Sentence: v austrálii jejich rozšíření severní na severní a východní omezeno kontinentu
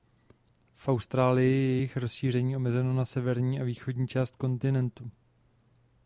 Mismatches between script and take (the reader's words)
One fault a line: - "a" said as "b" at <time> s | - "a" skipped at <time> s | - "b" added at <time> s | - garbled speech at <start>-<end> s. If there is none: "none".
- "je" added at 1.5 s
- "severní" said as "omezeno" at 2.6 s
- "omezeno" said as "část" at 4.1 s